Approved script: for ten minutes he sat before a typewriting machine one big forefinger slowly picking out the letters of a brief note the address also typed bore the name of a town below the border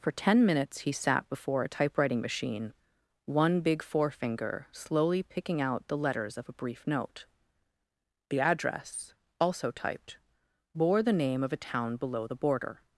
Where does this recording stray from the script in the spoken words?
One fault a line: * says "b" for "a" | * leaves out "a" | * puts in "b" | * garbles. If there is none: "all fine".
all fine